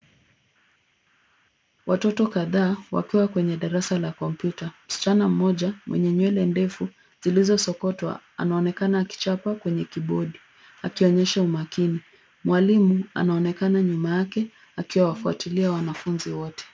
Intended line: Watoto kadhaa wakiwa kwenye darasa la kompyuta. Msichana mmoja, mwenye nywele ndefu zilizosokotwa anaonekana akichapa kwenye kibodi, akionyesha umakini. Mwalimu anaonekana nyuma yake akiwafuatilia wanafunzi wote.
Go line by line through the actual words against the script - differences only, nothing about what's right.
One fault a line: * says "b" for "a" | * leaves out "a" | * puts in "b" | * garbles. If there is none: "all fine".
all fine